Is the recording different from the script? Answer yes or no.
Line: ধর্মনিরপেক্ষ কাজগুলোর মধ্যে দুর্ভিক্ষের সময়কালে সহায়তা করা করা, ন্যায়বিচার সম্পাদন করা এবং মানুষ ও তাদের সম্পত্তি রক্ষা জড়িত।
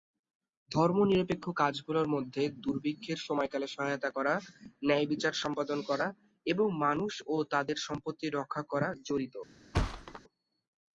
yes